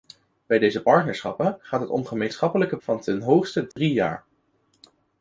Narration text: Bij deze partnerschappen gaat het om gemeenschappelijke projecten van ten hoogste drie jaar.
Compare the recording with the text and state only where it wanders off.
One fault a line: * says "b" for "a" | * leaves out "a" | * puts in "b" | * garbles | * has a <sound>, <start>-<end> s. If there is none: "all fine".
* leaves out "projecten"
* has a dropout, 3.7-3.8 s